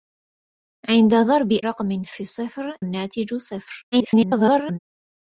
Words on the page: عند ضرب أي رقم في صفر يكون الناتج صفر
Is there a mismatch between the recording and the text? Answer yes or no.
yes